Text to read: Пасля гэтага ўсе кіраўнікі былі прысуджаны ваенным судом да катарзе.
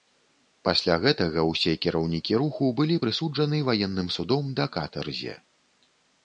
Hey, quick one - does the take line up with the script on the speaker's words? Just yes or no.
no